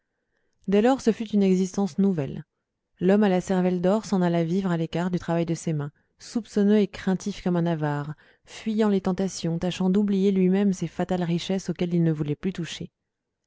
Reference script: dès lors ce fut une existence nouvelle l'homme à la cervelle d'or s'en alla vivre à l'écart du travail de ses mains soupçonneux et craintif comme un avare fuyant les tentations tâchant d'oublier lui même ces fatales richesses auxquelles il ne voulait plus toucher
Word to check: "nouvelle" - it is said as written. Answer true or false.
true